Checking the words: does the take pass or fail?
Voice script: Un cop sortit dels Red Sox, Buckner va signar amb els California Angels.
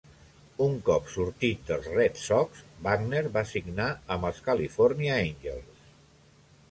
pass